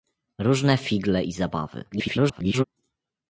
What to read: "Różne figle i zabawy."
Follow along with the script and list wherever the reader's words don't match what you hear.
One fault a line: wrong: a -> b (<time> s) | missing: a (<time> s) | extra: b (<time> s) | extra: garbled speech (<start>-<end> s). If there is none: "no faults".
extra: garbled speech (1.9-2.6 s)